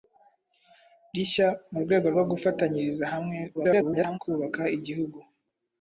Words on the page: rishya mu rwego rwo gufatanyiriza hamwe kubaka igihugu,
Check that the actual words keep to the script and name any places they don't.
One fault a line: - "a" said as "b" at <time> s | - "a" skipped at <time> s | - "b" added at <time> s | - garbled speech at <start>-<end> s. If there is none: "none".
- garbled speech at 3.5-4.2 s